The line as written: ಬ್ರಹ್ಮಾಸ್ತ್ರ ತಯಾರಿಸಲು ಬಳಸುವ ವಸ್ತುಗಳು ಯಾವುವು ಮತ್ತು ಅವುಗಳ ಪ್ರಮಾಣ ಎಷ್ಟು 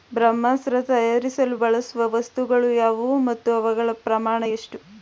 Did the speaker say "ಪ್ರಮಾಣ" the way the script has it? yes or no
yes